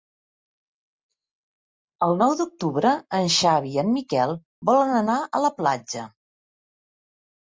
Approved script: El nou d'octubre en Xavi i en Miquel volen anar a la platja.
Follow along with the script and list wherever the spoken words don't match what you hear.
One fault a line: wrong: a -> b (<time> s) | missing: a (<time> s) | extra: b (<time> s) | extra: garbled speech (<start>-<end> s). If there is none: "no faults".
no faults